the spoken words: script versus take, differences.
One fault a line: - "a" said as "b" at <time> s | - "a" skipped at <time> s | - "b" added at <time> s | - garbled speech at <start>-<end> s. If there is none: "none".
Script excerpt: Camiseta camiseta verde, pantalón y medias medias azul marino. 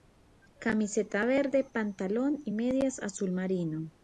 - "camiseta" skipped at 1.2 s
- "medias" skipped at 3.0 s